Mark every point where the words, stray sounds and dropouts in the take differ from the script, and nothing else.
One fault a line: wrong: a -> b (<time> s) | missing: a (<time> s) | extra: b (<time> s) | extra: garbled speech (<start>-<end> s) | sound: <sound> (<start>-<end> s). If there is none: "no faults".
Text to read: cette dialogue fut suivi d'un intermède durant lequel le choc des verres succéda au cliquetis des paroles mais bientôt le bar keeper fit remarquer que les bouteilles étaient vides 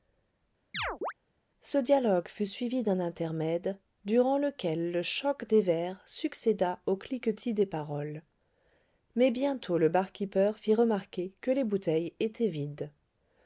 sound: chirp (0.7-1.1 s)
wrong: cette -> ce (1.6 s)